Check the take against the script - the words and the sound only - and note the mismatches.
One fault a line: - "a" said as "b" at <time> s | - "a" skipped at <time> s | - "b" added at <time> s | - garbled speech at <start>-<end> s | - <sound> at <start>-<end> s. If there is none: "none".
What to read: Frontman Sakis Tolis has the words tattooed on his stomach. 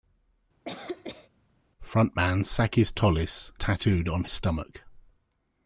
- cough at 0.7-1.3 s
- "has the words" skipped at 3.5 s
- "his" skipped at 4.3 s